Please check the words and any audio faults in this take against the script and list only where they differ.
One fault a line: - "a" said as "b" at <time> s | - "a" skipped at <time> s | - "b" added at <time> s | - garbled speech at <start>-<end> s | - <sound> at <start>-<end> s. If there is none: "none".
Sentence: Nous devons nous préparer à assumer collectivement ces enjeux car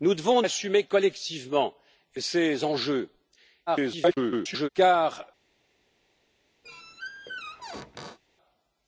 - "nous préparer à" skipped at 0.4 s
- garbled speech at 3.7-4.7 s
- squeak at 6.6-8.2 s